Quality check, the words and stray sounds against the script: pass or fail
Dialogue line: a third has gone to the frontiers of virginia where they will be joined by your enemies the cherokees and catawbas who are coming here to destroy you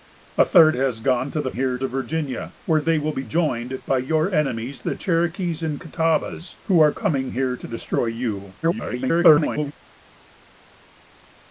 fail